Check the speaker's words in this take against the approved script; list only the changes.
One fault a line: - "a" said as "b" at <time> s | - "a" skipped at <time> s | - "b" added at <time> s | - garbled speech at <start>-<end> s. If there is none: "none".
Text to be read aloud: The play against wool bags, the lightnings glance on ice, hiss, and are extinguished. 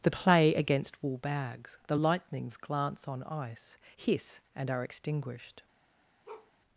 none